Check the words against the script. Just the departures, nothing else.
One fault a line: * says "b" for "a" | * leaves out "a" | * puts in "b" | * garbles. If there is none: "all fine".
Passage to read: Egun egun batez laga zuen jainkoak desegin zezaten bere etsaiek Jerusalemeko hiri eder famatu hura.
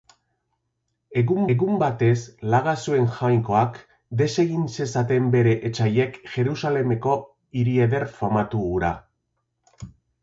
all fine